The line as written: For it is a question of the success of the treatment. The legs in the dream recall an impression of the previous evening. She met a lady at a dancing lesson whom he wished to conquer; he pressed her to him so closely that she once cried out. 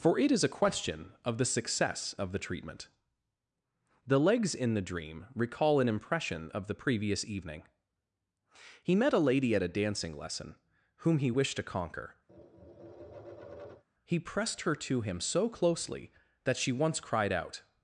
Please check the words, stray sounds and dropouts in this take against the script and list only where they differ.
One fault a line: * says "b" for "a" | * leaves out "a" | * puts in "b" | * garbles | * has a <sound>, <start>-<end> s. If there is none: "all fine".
* says "He" for "She"
* has a tap, 12.3-13.8 s